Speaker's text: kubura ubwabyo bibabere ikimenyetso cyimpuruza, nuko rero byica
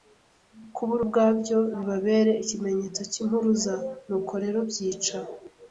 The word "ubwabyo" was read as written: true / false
true